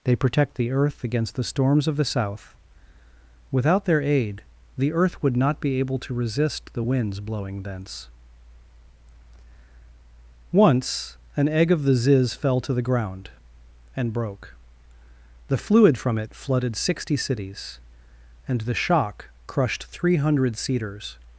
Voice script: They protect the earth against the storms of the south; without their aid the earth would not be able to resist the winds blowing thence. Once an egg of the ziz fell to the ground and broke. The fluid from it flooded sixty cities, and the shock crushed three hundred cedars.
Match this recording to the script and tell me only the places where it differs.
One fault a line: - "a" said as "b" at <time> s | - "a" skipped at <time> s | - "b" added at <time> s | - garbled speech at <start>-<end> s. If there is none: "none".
none